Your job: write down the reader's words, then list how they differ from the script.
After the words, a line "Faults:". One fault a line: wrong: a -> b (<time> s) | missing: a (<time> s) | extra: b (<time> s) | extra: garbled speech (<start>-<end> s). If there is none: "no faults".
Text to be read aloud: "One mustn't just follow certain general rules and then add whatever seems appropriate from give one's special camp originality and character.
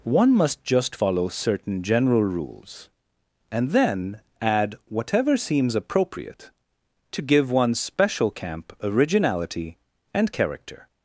"One must just follow certain general rules and then add whatever seems appropriate to give one's special camp originality and character.
Faults:
wrong: mustn't -> must (0.3 s)
wrong: from -> to (7.1 s)